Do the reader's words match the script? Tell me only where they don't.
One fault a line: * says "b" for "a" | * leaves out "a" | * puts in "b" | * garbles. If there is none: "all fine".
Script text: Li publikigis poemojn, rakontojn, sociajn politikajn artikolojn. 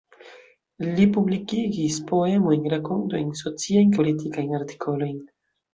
all fine